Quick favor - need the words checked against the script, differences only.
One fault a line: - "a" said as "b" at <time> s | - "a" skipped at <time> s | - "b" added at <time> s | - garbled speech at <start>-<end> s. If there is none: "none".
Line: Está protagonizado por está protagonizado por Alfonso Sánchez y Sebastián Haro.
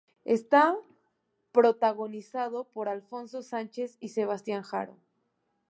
- "está protagonizado por" skipped at 2.9 s